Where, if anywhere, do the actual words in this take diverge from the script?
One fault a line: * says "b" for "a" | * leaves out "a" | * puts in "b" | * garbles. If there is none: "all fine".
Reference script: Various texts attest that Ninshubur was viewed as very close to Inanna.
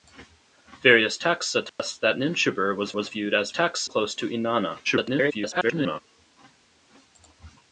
* puts in "was"
* says "texts" for "very"
* garbles